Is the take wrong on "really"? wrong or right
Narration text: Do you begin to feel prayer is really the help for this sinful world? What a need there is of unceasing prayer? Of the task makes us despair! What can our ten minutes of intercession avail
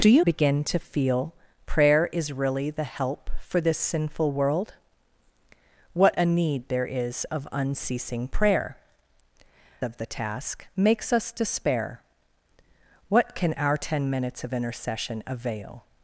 right